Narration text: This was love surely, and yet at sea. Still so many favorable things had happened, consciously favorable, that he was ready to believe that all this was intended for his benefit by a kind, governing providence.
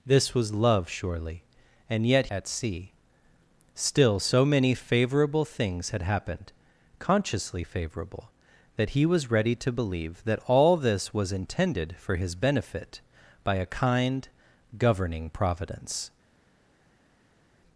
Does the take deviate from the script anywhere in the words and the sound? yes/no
no